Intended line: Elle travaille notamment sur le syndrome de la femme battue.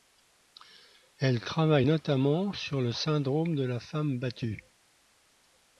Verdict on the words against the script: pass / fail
pass